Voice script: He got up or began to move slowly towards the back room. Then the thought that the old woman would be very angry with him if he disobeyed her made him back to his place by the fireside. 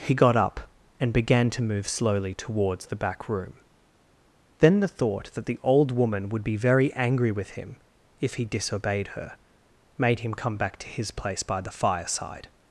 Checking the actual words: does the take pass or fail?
fail